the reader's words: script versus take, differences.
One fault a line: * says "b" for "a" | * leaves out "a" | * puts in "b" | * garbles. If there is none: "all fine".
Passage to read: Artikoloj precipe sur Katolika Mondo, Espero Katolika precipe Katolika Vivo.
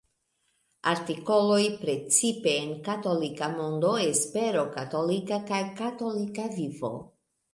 * says "en" for "sur"
* says "kaj" for "precipe"